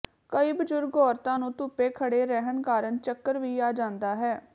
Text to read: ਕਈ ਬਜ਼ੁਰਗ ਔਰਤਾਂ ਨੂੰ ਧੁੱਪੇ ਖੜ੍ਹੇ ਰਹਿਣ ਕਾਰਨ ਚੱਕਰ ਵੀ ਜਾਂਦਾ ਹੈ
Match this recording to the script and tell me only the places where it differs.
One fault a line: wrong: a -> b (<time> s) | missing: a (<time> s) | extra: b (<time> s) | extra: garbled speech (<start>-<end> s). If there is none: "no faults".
extra: ਆ (3.6 s)